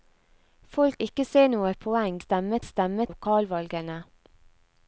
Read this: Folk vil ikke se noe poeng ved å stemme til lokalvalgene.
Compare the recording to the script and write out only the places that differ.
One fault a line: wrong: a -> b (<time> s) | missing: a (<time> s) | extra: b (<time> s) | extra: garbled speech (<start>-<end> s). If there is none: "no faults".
missing: vil (1.0 s)
wrong: ved -> stemme (2.2 s)
missing: til (3.1 s)